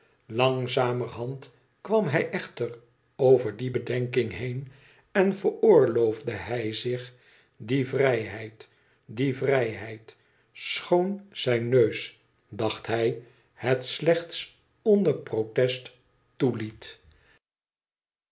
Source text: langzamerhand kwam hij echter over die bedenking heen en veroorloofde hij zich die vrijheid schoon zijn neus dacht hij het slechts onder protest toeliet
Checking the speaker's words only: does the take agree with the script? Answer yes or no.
no